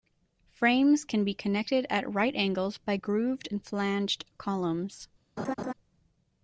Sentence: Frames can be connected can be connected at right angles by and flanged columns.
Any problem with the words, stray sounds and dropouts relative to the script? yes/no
yes